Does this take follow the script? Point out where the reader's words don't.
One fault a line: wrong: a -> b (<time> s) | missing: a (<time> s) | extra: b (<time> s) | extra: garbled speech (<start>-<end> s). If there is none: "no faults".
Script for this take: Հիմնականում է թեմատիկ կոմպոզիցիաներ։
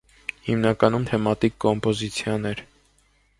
no faults